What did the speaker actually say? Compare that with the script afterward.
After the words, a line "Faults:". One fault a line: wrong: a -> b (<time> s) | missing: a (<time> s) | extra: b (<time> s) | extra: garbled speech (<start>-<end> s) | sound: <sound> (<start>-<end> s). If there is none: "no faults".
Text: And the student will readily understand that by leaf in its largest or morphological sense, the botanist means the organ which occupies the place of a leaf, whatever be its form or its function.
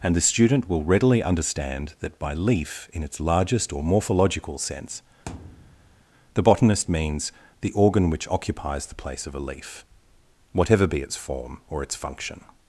And the student will readily understand that by leaf in its largest or morphological sense, the botanist means the organ which occupies the place of a leaf, whatever be its form or its function.
Faults:
sound: thud (5.3-6.0 s)